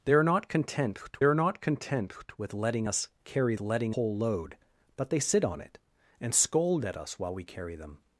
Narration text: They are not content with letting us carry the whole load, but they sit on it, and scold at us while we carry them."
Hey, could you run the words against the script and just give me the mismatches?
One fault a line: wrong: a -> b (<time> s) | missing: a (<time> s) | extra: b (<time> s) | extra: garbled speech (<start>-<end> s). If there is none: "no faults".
extra: are not content (1.2 s)
wrong: the -> letting (3.6 s)